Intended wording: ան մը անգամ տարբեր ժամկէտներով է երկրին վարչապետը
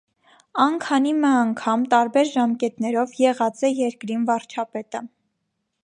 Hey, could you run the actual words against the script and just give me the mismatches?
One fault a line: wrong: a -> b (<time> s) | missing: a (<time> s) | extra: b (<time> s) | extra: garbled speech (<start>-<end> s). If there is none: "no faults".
extra: քանի (0.8 s)
extra: եղած (3.3 s)